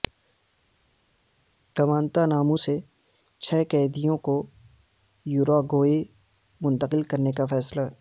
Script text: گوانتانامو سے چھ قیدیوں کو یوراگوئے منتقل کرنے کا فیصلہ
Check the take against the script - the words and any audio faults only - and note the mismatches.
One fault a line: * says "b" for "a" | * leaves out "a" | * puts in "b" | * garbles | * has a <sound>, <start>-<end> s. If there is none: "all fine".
all fine